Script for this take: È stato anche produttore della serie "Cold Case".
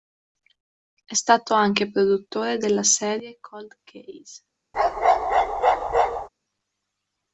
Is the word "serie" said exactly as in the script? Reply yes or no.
yes